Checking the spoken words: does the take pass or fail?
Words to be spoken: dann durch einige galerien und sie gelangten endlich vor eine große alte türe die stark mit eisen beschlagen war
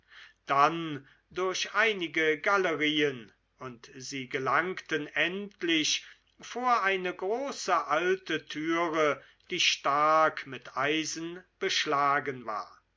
pass